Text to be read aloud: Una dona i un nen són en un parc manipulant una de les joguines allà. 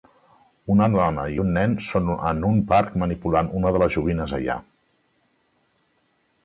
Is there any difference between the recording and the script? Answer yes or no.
no